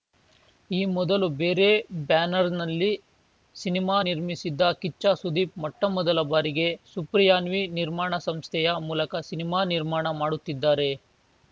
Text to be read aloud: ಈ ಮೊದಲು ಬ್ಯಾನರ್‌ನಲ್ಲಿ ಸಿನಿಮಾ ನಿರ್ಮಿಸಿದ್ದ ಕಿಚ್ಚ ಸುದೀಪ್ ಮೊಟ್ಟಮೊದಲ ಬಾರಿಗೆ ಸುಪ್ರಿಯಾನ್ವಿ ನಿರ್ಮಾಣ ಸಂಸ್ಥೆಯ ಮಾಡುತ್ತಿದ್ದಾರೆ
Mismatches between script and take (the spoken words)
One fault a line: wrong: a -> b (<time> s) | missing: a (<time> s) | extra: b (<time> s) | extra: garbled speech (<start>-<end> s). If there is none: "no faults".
extra: ಬೇರೆ (1.4 s)
extra: ಮೂಲಕ ಸಿನಿಮಾ ನಿರ್ಮಾಣ (8.9 s)